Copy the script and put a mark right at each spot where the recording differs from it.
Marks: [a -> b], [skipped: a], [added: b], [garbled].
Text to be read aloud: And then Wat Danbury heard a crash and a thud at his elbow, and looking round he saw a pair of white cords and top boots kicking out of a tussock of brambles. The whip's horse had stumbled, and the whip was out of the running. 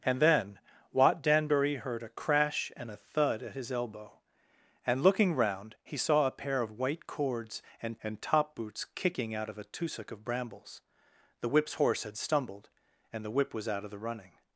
And then Wat Danbury heard a crash and a thud at his elbow, and looking round he saw a pair of white cords and [added: and] top boots kicking out of a tussock of brambles. The whip's horse had stumbled, and the whip was out of the running.